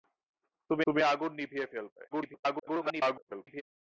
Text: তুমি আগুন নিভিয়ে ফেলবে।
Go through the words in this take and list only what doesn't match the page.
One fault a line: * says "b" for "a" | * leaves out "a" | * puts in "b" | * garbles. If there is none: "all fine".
* puts in "তুমি"
* garbles